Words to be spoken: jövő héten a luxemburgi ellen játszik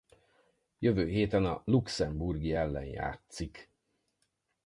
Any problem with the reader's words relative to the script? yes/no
no